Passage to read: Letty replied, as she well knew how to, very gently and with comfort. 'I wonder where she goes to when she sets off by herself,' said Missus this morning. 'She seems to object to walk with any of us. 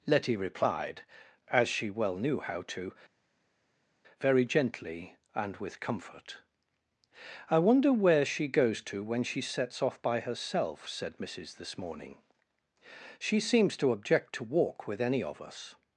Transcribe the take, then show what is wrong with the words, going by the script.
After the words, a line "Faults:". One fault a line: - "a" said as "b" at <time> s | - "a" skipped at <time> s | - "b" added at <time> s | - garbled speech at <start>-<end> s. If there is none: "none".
Letty replied, as she well knew how to, very gently and with comfort. 'I wonder where she goes to when she sets off by herself,' said Missus this morning. 'She seems to object to walk with any of us.
Faults:
none